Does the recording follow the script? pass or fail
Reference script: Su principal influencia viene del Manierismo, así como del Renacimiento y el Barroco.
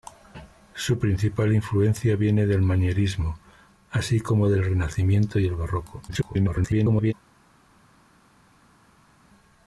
fail